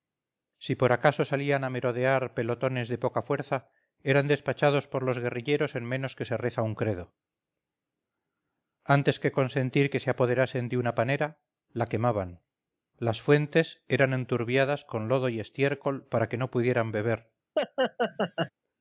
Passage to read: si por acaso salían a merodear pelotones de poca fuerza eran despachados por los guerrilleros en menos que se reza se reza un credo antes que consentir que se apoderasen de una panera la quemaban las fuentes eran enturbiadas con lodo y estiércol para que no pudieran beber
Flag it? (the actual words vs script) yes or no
yes